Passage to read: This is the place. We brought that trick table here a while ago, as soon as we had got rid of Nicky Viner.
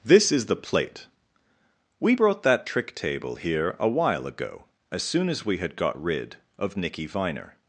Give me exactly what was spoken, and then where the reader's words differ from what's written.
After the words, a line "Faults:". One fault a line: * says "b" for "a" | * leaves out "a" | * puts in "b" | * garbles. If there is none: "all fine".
This is the plate. We brought that trick table here a while ago, as soon as we had got rid of Nicky Viner.
Faults:
* says "plate" for "place"